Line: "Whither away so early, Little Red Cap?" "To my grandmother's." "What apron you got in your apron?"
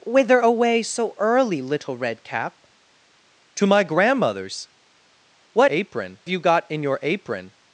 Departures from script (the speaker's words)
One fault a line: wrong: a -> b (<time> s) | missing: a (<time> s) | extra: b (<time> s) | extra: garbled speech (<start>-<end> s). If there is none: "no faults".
no faults